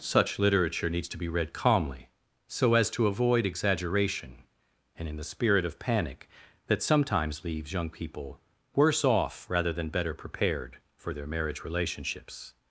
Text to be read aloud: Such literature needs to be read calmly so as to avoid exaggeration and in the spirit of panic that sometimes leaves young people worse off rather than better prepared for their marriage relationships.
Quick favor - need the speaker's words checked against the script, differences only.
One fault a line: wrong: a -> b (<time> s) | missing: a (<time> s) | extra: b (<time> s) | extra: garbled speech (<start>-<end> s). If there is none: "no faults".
no faults